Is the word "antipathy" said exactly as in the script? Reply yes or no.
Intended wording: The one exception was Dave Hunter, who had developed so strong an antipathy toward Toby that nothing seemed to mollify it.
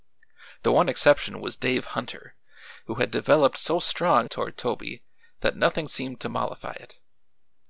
no